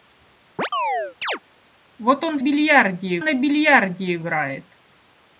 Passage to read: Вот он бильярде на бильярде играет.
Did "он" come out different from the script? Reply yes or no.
no